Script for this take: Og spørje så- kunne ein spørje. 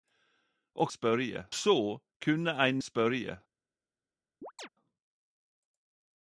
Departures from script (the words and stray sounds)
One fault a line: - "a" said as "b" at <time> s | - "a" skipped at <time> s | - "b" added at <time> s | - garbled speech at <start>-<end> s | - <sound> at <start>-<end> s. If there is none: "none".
- chirp at 4.4-4.7 s